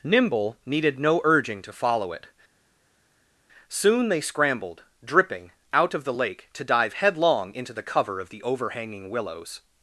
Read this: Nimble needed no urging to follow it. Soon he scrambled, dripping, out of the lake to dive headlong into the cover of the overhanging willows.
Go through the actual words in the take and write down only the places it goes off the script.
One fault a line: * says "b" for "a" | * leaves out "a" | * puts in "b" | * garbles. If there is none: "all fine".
* says "they" for "he"